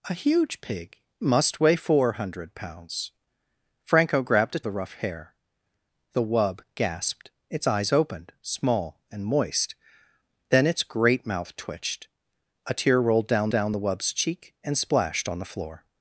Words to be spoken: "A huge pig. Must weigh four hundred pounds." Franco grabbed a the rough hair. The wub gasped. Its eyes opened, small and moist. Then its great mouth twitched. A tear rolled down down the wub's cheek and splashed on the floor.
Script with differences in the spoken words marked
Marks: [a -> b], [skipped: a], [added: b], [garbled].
"A huge pig. Must weigh four hundred pounds." Franco grabbed a the rough hair. The wub gasped. Its eyes opened, small and moist. Then its great mouth twitched. A tear rolled down down the wub's cheek and splashed on the floor.